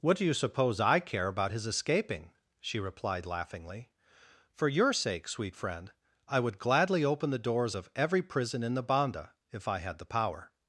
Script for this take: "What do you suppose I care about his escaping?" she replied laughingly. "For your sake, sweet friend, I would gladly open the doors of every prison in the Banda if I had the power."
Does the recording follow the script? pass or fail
pass